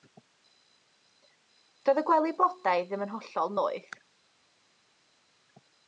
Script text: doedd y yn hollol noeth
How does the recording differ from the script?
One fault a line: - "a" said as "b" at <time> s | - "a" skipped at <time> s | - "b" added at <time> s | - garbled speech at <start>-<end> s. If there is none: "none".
- "gwely blodau ddim" added at 2.1 s